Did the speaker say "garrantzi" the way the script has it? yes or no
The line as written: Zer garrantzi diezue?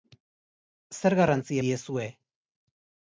yes